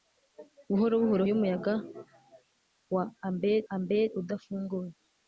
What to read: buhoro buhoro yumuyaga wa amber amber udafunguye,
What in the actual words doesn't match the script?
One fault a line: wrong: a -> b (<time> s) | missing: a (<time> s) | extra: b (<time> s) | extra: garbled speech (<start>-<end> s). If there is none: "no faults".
no faults